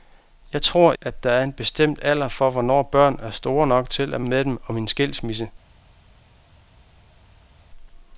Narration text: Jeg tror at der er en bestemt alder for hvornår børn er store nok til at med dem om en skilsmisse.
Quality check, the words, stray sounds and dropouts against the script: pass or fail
pass